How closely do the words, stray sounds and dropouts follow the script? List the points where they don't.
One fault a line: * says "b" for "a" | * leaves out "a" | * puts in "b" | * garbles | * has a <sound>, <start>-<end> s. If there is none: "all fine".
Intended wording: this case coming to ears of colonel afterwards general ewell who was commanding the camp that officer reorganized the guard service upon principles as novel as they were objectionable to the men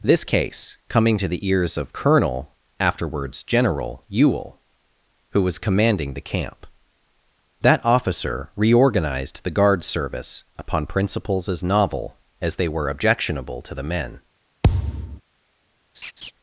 * puts in "the"
* has a thud, 14.6-15.2 s
* has a laugh, 15.9-16.3 s